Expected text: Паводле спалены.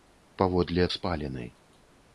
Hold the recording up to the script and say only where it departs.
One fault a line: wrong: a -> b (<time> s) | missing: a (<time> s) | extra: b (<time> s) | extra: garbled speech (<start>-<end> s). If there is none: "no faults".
no faults